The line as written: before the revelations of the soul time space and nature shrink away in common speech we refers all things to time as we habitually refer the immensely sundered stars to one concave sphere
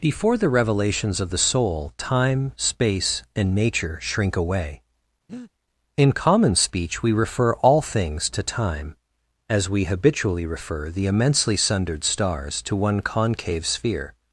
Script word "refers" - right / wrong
wrong